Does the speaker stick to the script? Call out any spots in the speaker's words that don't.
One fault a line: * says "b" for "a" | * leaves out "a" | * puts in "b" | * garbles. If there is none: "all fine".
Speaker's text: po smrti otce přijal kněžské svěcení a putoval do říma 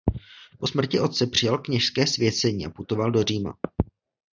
all fine